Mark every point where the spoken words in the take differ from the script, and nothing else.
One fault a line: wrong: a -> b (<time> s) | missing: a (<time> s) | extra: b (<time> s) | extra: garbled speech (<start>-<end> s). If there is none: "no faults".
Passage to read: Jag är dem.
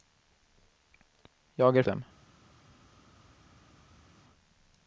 no faults